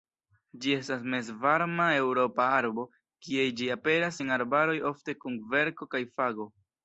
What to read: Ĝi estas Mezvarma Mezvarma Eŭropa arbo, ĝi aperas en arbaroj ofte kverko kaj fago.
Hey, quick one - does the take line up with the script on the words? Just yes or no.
no